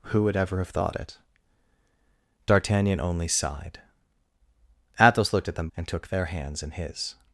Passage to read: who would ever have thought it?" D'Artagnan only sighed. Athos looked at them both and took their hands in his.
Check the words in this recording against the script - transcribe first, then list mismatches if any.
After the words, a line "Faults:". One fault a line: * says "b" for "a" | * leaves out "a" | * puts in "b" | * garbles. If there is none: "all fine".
who would ever have thought it?" D'Artagnan only sighed. Athos looked at them and took their hands in his.
Faults:
* leaves out "both"